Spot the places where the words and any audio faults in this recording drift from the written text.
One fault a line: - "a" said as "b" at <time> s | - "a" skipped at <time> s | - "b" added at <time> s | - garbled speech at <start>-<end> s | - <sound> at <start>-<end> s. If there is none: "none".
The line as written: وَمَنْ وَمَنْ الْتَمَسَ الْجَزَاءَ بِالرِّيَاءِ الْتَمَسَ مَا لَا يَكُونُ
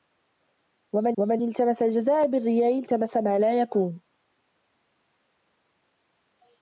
none